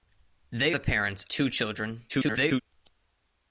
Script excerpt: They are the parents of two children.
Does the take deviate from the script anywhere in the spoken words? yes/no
yes